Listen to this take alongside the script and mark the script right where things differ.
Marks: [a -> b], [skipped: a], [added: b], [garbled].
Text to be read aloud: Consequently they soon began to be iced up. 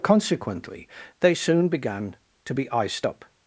Consequently they soon began to be iced up.